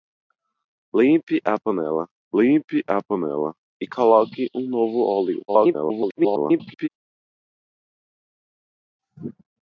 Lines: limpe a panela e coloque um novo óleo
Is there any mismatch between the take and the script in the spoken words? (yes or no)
yes